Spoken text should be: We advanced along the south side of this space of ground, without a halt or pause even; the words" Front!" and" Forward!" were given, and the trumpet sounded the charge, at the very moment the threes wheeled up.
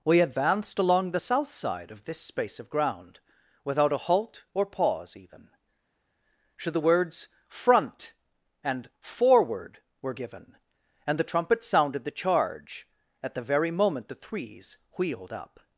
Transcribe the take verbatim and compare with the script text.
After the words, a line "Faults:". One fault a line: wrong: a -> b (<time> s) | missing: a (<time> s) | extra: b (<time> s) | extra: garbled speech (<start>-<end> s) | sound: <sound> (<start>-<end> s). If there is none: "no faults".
We advanced along the south side of this space of ground, without a halt or pause even; should the words" Front!" and" Forward!" were given, and the trumpet sounded the charge, at the very moment the threes wheeled up.
Faults:
extra: should (6.6 s)